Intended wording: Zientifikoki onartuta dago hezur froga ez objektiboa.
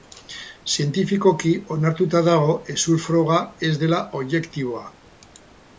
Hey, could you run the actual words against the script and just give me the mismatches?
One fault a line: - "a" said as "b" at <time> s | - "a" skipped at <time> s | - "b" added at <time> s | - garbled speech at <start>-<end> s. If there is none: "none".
- "dela" added at 3.9 s